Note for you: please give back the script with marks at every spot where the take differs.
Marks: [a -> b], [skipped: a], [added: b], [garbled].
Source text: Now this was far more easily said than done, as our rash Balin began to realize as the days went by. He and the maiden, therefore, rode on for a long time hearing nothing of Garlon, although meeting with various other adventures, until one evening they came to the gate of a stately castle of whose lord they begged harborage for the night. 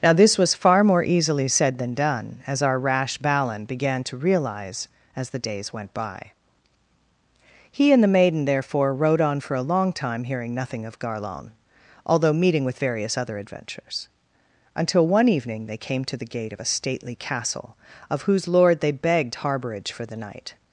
Now this was far more easily said than done, as our rash Balin began to realize as the days went by. He and the maiden, therefore, rode on for a long time hearing nothing of Garlon, although meeting with various other adventures, until one evening they came to the gate of a stately castle of whose lord they begged harborage for the night.